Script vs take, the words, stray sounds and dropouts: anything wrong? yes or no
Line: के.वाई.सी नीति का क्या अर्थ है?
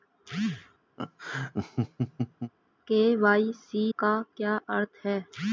yes